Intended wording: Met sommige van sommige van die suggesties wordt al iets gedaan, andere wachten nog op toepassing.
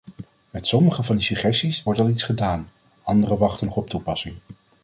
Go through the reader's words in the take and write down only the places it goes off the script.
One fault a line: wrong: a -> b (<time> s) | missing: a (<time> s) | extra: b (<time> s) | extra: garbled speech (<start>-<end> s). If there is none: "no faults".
missing: sommige van (1.1 s)